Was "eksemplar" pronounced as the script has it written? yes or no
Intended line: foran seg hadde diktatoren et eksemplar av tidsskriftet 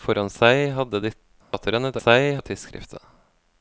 no